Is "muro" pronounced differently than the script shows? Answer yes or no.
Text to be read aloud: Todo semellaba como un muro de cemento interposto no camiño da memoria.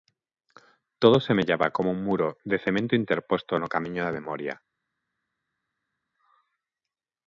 no